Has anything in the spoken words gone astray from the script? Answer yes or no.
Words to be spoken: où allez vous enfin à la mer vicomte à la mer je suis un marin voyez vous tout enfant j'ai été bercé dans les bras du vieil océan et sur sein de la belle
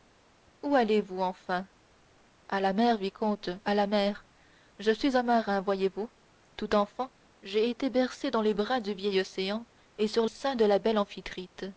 no